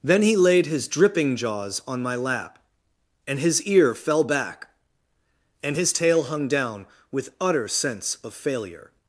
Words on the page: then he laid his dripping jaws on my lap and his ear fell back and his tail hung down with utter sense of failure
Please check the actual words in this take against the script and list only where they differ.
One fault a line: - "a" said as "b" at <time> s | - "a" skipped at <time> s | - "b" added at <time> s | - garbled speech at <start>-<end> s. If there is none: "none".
none